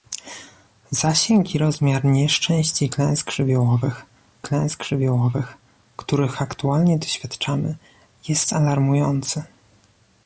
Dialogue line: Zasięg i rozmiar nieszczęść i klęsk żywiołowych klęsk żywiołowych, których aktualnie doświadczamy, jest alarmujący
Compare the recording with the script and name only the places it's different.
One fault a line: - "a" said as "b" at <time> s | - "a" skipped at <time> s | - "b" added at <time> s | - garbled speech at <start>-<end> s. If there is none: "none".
none